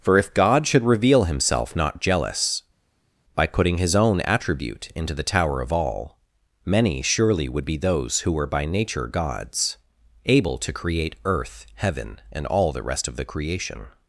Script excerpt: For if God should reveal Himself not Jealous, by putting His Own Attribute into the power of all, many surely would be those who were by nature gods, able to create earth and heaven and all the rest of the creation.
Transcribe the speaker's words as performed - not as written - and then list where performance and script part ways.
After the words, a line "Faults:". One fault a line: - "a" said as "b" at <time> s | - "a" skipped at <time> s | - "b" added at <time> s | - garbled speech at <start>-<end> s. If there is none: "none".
For if God should reveal Himself not Jealous, by putting His Own Attribute into the tower of all, many surely would be those who were by nature gods, able to create earth heaven and all the rest of the creation.
Faults:
- "power" said as "tower" at 5.2 s
- "and" skipped at 11.6 s